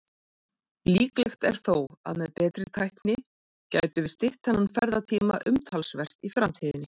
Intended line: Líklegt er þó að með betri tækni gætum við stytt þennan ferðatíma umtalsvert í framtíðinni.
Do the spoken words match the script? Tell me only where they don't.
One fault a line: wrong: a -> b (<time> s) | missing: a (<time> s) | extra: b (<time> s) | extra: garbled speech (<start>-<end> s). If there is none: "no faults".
no faults